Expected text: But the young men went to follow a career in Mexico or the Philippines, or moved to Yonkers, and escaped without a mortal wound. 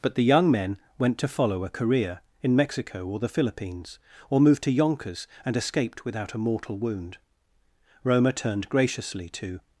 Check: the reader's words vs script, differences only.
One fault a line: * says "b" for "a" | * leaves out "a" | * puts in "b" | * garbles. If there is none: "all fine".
* puts in "Roma turned graciously to"